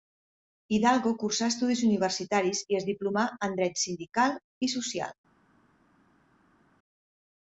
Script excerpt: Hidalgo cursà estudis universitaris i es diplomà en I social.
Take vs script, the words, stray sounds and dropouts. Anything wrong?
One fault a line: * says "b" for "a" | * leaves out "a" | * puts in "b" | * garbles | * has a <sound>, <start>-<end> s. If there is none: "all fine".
* puts in "Dret sindical"